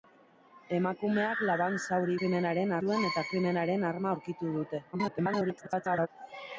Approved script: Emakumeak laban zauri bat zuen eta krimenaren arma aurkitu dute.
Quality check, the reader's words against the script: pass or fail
fail